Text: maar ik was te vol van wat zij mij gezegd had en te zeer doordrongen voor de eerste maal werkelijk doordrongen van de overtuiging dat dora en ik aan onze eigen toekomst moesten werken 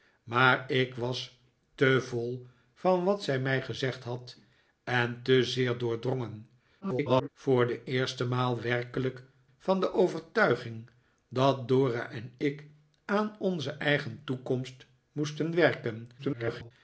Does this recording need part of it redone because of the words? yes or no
yes